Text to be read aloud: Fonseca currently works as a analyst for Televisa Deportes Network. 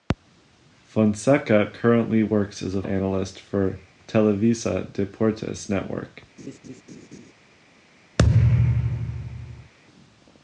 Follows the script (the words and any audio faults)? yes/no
no